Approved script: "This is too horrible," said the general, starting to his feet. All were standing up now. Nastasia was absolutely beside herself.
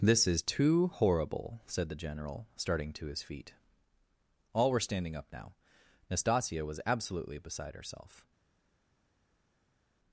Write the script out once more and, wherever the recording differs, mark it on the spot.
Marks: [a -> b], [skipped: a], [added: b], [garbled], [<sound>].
"This is too horrible," said the general, starting to his feet. All were standing up now. Nastasia was absolutely beside herself.